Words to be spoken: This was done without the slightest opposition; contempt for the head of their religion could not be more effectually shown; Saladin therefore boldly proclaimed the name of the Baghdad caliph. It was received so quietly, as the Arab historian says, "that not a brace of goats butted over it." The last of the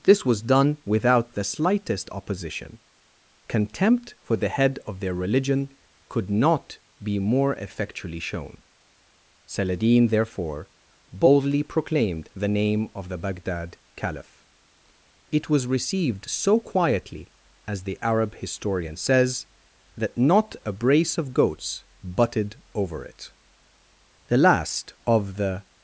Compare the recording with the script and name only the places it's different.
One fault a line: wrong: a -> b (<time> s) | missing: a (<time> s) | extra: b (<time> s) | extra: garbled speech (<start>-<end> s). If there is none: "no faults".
no faults